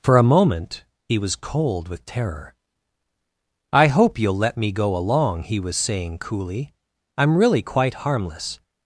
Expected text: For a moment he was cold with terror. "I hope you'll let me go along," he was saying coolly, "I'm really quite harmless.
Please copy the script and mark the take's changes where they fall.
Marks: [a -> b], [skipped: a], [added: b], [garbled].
For a moment he was cold with terror. "I hope you'll let me go along," he was saying coolly, "I'm really quite harmless.